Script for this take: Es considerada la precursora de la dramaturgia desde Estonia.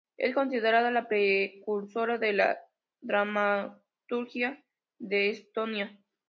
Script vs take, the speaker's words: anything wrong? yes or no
yes